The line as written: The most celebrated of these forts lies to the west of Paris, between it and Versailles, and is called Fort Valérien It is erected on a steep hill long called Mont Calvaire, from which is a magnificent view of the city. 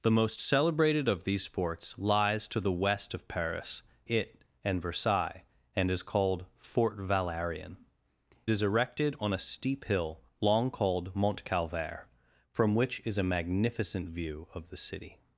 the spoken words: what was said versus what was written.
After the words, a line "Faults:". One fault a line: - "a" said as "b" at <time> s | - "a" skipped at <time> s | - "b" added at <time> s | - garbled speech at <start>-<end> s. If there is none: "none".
The most celebrated of these forts lies to the west of Paris, it and Versailles, and is called Fort Valérien Is erected on a steep hill long called Mont Calvaire, from which is a magnificent view of the city.
Faults:
- "between" skipped at 3.8 s
- "It" skipped at 7.8 s